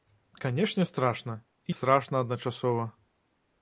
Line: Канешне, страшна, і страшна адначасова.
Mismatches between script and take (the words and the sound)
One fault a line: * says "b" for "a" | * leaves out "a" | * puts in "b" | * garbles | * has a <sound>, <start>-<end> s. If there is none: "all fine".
all fine